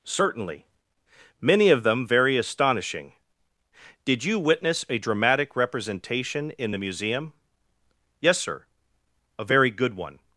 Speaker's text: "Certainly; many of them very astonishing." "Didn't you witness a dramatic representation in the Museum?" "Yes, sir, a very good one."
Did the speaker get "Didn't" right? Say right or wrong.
wrong